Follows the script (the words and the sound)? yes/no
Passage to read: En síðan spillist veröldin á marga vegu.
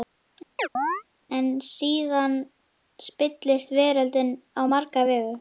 no